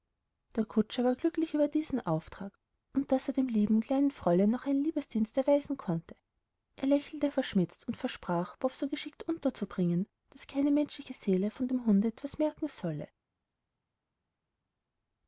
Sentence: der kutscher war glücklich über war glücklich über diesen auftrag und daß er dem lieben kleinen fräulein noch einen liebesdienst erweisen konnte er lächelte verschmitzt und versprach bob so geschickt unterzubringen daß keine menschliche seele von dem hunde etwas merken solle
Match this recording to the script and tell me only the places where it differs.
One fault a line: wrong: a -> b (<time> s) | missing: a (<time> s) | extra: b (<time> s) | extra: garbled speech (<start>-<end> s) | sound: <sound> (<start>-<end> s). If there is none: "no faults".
missing: war glücklich über (1.7 s)